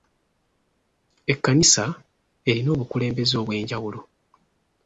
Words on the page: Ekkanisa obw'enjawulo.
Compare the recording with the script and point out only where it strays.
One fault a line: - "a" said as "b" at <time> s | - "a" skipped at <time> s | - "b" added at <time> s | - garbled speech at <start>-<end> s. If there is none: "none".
- "erina obukulembeze" added at 2.5 s